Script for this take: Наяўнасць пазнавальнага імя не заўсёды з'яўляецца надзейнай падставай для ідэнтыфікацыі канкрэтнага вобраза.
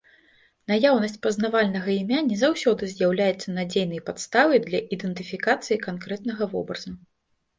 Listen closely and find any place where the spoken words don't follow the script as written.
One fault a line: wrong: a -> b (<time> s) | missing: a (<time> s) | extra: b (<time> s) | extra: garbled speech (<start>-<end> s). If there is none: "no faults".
no faults